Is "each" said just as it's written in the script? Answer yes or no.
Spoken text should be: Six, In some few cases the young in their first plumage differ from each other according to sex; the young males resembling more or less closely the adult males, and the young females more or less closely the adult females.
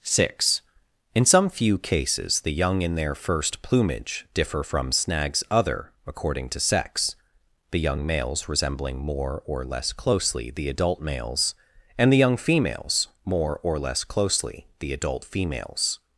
no